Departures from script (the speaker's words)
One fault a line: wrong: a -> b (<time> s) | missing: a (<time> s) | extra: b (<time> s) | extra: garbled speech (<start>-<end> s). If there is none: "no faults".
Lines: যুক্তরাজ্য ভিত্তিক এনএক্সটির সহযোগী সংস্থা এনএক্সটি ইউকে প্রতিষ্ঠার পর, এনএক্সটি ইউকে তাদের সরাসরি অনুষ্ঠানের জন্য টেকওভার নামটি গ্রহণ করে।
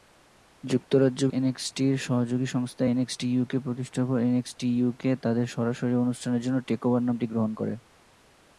missing: ভিত্তিক (1.2 s)